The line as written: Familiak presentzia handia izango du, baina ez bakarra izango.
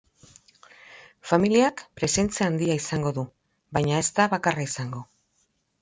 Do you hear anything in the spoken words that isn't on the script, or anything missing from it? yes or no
yes